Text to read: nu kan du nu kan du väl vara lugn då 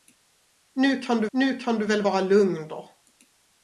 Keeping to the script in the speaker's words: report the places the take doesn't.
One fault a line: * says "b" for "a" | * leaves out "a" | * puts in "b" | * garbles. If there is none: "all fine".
all fine